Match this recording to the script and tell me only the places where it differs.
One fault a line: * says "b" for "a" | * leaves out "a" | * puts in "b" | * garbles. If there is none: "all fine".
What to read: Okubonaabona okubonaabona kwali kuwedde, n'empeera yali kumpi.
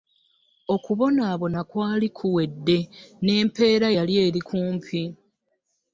* leaves out "okubonaabona"
* puts in "eri"